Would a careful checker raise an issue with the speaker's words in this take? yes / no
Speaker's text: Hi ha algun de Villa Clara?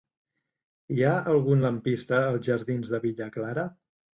yes